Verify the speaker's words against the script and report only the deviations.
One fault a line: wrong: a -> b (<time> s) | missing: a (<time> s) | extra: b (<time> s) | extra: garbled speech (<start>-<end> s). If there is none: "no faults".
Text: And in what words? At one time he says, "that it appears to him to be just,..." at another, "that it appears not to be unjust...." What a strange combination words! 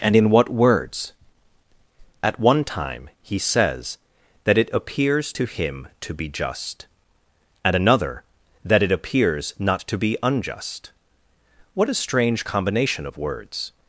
extra: of (13.0 s)